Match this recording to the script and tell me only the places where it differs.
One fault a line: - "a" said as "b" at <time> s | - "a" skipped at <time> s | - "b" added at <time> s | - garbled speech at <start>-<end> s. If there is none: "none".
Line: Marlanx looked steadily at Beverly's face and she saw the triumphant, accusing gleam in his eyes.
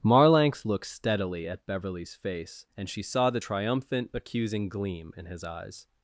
none